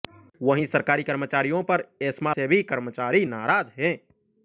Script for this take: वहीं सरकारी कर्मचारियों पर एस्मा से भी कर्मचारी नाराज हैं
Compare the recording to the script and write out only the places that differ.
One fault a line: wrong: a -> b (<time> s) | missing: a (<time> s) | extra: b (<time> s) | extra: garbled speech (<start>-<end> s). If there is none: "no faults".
no faults